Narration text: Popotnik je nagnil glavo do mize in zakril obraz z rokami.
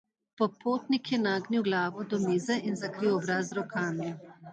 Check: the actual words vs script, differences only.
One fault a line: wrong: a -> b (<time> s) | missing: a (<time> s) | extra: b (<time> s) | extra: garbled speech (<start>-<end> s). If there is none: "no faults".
no faults